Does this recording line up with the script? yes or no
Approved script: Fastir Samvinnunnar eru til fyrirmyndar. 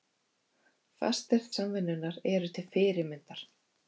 yes